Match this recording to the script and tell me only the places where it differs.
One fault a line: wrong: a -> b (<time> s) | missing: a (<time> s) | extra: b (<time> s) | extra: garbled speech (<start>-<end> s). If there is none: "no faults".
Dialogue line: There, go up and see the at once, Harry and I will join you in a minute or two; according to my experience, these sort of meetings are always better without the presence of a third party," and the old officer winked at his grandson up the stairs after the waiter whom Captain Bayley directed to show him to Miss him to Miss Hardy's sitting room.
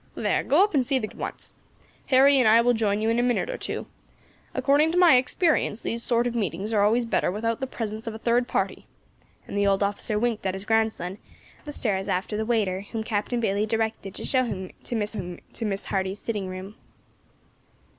no faults